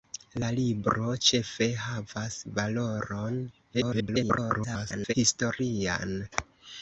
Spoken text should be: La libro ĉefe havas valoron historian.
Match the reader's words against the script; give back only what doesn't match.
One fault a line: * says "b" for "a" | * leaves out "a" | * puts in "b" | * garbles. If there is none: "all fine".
* garbles